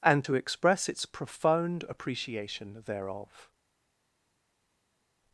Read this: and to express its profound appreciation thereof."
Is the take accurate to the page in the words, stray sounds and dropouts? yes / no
yes